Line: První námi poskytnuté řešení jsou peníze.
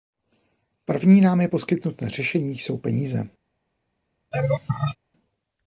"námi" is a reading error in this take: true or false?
false